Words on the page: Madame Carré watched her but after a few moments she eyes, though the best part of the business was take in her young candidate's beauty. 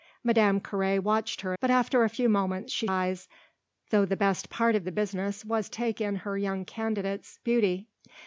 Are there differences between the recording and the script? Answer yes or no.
no